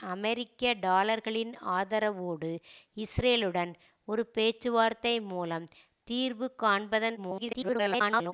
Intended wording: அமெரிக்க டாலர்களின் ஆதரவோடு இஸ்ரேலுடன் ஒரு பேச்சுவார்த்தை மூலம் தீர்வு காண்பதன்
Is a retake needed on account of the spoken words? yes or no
yes